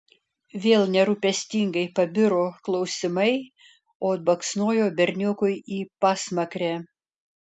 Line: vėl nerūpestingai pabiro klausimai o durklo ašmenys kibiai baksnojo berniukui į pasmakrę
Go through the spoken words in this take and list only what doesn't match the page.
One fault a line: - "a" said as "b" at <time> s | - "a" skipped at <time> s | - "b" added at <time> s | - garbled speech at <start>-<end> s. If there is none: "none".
- "durklo ašmenys kibiai" skipped at 4.1 s